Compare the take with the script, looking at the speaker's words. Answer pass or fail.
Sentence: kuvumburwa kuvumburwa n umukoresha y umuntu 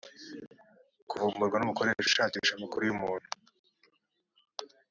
fail